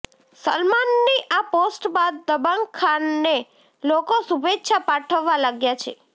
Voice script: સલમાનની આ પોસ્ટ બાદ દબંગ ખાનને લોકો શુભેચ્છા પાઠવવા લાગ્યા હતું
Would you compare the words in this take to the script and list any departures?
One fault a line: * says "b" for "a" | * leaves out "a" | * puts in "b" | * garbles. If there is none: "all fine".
* says "છે" for "હતું"